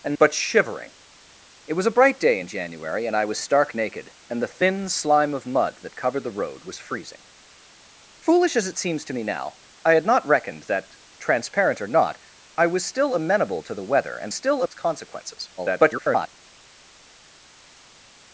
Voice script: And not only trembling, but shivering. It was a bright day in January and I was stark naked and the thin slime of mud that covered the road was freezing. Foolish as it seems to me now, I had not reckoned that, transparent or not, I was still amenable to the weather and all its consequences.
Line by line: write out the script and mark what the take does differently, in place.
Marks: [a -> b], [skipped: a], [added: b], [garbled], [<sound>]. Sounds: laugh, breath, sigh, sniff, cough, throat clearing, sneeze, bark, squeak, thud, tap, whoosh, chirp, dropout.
And [skipped: not only trembling,] but shivering. It was a bright day in January and I was stark naked and the thin slime of mud that covered the road was freezing. Foolish as it seems to me now, I had not reckoned that, transparent or not, I was still amenable to the weather and [all -> still] its consequences. [garbled]